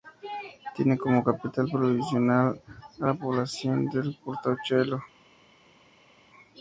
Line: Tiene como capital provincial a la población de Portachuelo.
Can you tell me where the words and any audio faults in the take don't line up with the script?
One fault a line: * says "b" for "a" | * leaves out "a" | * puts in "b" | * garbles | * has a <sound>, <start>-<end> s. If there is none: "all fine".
all fine